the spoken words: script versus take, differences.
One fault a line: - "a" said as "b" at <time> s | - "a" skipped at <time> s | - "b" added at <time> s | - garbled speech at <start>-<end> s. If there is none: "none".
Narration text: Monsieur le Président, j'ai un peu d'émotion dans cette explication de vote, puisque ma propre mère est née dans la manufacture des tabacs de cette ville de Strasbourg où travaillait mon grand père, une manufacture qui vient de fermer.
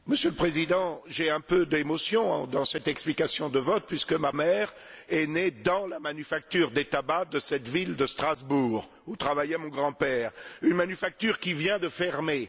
- "propre" skipped at 4.3 s